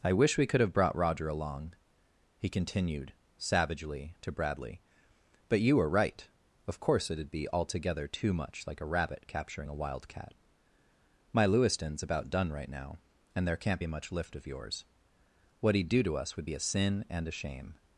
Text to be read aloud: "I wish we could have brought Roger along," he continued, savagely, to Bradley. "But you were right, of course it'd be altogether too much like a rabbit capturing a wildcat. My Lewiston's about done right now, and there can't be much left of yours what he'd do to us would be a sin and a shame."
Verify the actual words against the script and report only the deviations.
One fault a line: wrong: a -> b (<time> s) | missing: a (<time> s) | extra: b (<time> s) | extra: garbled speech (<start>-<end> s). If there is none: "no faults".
wrong: left -> lift (14.1 s)